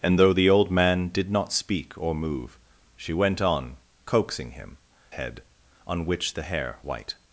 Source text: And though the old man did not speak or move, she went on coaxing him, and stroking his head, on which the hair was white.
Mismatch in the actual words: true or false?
true